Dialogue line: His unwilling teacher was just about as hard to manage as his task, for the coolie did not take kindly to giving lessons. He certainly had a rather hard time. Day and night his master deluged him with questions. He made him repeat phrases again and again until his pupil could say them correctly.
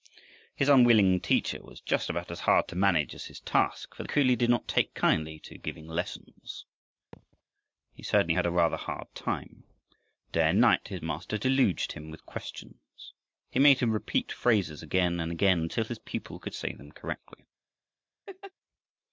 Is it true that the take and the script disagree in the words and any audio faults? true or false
true